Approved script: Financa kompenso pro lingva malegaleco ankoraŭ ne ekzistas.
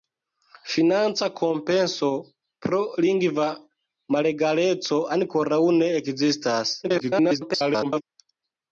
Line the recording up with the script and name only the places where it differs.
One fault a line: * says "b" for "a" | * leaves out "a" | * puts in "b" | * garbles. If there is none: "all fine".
* garbles